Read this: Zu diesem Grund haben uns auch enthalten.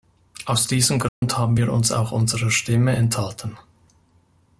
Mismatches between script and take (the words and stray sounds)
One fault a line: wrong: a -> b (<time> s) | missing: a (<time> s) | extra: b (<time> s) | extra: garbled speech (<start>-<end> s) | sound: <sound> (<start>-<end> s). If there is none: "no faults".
wrong: Zu -> Aus (0.5 s)
sound: dropout (1.1-1.2 s)
extra: wir (1.5 s)
extra: unserer Stimme (2.1 s)